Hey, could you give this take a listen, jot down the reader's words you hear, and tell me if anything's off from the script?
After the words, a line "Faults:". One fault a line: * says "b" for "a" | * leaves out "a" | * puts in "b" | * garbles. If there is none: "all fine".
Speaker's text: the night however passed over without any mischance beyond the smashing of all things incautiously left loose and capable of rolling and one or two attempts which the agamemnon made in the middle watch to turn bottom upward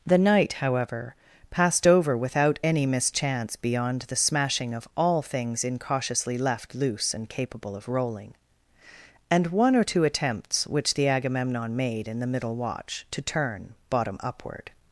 the night however passed over without any mischance beyond the smashing of all things incautiously left loose and capable of rolling and one or two attempts which the agamemnon made in the middle watch to turn bottom upward
Faults:
all fine